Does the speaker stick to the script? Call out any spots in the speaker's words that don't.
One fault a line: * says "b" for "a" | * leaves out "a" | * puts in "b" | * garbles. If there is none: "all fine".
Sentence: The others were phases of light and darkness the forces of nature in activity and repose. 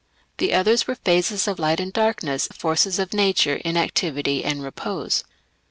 all fine